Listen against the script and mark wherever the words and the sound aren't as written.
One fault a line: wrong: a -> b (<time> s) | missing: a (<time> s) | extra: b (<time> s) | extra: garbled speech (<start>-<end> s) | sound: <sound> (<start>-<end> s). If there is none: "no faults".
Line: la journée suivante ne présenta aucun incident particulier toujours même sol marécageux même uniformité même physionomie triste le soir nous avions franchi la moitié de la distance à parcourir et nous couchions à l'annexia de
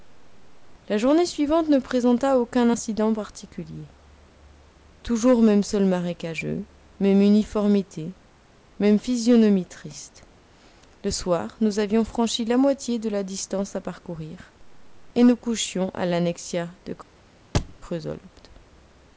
sound: thud (17.5-17.8 s)